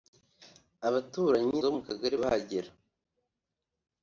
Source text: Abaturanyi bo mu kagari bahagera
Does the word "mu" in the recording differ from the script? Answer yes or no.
no